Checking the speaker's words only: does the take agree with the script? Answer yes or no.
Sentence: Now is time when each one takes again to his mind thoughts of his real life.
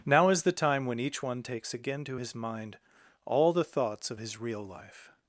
no